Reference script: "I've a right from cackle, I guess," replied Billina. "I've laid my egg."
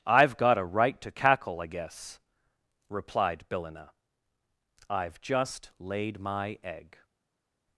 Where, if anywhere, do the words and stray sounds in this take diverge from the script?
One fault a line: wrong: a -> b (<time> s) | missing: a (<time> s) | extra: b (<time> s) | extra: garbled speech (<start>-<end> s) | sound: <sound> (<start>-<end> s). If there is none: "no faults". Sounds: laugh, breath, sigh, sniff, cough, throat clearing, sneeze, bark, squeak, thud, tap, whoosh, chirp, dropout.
extra: got (0.4 s)
wrong: from -> to (1.0 s)
extra: just (5.2 s)